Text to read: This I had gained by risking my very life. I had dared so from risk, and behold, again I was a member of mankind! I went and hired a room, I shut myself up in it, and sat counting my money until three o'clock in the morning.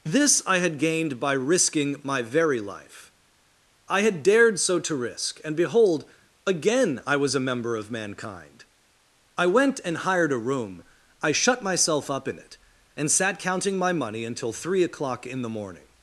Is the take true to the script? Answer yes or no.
no